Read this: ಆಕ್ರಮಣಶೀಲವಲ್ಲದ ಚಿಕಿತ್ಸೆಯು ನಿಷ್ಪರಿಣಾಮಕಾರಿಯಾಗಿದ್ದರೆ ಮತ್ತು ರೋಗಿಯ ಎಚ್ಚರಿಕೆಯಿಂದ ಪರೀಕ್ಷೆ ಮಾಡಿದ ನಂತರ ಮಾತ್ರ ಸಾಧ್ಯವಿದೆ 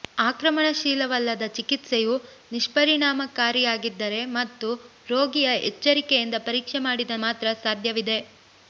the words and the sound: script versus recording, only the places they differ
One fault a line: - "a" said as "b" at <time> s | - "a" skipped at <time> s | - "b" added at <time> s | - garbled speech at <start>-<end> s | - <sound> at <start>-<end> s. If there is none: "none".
- "ನಂತರ" skipped at 7.2 s